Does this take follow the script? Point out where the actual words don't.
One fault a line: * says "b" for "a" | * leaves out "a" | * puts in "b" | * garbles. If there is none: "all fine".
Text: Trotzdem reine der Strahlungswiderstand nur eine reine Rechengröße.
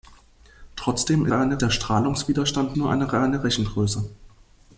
all fine